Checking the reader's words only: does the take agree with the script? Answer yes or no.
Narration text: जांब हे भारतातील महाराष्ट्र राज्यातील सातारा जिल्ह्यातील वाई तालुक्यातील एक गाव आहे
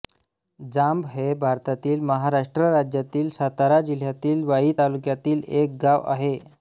yes